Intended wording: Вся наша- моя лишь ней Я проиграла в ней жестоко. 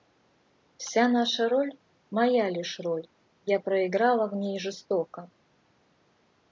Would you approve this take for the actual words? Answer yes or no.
no